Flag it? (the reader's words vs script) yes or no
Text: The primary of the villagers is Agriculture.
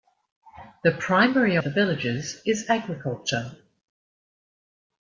no